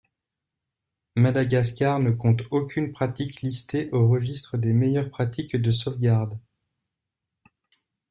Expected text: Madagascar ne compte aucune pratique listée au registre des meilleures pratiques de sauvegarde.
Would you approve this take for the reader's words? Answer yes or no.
yes